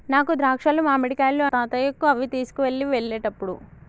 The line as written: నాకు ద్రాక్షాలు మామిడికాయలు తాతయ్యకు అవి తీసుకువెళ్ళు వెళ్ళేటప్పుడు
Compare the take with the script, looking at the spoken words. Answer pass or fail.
pass